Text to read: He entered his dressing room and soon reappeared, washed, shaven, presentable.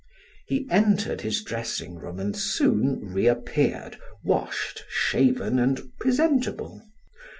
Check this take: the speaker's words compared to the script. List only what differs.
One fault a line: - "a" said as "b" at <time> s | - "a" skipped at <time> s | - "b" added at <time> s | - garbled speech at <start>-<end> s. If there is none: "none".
- "and" added at 5.6 s